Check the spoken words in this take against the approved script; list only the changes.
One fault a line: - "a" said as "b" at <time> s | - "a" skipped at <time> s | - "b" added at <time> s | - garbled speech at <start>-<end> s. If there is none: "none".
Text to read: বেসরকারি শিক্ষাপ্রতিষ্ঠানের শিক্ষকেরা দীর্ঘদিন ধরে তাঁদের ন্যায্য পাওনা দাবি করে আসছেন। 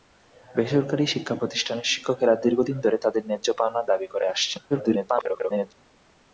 - garbled speech at 4.7-5.7 s